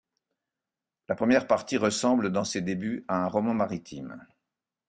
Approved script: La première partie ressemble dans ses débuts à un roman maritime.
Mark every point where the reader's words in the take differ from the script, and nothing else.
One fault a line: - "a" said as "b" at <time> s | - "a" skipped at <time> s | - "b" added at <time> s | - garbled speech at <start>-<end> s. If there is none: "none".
none